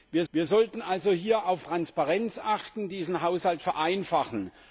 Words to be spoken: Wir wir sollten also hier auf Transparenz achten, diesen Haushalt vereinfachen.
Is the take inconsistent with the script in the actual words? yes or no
no